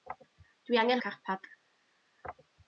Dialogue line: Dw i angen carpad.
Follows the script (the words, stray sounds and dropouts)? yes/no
yes